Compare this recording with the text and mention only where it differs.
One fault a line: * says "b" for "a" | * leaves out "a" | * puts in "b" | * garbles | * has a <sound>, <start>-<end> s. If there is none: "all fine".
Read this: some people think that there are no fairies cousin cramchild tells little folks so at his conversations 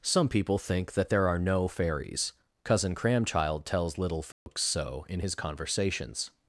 * has a dropout, 4.3-4.5 s
* says "in" for "at"